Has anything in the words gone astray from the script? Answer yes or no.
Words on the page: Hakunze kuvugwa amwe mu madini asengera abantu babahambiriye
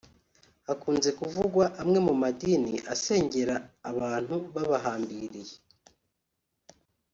no